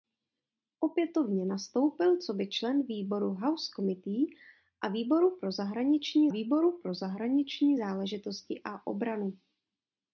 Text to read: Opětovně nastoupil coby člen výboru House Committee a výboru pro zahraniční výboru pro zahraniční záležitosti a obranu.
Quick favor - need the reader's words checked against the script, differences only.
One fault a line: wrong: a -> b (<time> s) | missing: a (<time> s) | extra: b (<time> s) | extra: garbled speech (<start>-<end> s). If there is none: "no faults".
no faults